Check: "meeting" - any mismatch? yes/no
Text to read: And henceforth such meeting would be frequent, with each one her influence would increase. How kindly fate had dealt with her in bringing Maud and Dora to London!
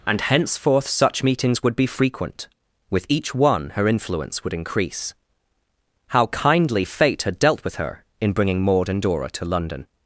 yes